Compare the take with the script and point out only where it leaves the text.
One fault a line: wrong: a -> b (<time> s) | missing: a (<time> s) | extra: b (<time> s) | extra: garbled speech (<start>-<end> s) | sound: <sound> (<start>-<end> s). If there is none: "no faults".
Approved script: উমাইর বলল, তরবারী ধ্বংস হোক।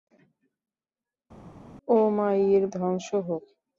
missing: বলল তরবারী (2.6 s)